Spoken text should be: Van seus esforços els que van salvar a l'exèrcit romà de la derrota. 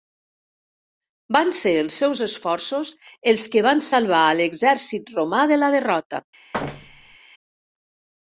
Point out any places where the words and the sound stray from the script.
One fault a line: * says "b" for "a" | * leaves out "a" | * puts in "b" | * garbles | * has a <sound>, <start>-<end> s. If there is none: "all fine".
* puts in "ser els"
* has a thud, 6.5-7.2 s